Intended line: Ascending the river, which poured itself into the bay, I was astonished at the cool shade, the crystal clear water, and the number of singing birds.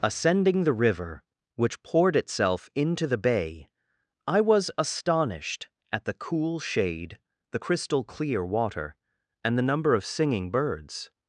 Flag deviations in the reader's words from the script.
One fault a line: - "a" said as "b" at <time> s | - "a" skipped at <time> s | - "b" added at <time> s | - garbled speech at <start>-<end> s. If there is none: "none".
none